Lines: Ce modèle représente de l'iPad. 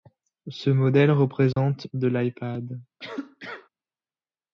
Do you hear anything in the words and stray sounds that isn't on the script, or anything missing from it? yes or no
yes